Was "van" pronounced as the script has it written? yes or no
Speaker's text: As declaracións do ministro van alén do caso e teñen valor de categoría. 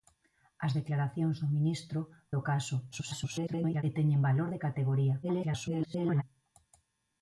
no